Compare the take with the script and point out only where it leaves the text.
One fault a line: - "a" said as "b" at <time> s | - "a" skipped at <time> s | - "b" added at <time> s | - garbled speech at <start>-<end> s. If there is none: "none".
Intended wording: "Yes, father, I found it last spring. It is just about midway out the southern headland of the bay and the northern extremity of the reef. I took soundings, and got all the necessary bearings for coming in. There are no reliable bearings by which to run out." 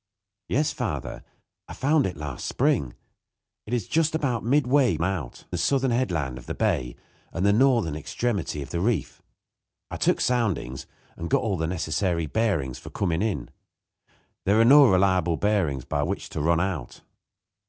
none